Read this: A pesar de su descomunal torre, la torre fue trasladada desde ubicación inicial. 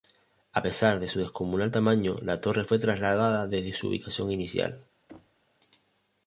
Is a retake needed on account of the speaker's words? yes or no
yes